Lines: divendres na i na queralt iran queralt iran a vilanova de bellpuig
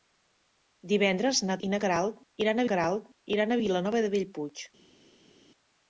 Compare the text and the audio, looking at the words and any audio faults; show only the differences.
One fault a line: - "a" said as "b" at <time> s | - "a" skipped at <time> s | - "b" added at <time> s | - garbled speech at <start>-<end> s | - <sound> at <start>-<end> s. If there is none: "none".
none